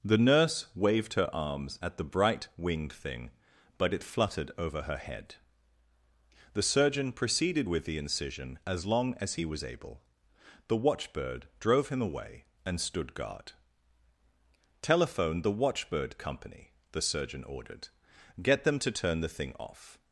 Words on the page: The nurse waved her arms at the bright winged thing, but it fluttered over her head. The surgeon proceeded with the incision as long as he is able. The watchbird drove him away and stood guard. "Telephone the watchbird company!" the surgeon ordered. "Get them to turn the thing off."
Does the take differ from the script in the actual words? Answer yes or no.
yes